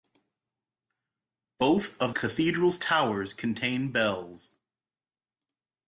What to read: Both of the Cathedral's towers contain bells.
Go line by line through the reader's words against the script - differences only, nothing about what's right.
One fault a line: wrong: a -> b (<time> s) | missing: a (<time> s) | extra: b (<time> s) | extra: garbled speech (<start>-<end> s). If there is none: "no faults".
missing: the (2.1 s)